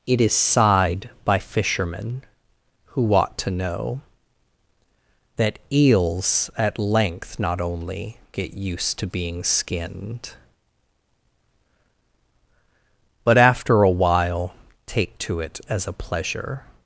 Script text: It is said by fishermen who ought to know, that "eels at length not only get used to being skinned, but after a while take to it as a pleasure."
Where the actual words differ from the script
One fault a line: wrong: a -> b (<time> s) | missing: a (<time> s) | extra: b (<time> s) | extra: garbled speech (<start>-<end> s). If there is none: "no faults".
wrong: said -> sighed (0.3 s)